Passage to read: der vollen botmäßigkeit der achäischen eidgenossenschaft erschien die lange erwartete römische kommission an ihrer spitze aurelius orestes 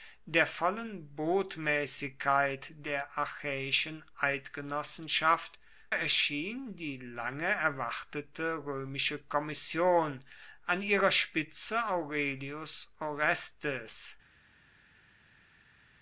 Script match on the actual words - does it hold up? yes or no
yes